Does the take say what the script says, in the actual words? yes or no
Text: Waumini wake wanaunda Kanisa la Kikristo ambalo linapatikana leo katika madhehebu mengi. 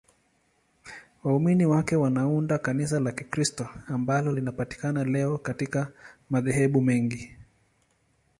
yes